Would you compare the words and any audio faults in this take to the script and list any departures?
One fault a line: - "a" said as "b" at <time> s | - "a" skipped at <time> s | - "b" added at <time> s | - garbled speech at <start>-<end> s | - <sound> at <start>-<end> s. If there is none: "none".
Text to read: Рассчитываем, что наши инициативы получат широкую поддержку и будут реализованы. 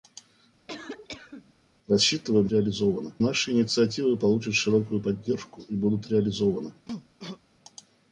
- cough at 0.7-1.5 s
- "что" said as "реализованы" at 2.5 s
- cough at 6.9-7.4 s